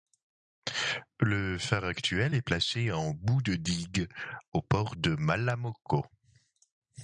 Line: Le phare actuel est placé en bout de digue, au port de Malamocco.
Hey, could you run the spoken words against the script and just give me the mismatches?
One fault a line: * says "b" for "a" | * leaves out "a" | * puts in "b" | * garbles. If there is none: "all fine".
all fine